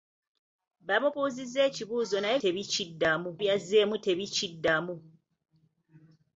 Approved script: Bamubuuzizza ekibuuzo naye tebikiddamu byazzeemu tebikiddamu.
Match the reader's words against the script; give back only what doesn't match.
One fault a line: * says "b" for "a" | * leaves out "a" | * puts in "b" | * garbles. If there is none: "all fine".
all fine